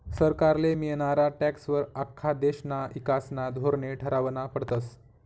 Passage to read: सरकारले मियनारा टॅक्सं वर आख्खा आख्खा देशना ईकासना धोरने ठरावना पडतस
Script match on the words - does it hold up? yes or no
no